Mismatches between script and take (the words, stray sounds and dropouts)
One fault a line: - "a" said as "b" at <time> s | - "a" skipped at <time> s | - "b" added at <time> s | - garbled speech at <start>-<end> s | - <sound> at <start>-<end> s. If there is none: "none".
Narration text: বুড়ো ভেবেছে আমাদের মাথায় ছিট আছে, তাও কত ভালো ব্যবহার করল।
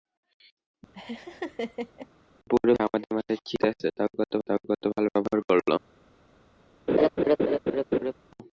- laugh at 0.9-2.1 s
- "ভেবেছে" skipped at 2.7 s
- "তাও কত" added at 4.5 s
- laugh at 6.9-8.1 s